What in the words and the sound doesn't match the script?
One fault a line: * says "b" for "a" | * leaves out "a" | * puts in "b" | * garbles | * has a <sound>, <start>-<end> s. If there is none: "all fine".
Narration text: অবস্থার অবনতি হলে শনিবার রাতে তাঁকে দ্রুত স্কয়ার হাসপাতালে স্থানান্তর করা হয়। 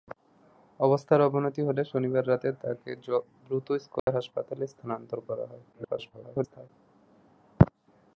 * has a dropout, 4.0-4.1 s
* garbles